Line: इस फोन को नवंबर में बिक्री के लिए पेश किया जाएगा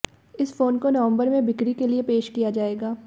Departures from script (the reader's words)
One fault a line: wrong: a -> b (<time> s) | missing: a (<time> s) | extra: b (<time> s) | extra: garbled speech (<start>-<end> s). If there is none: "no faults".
no faults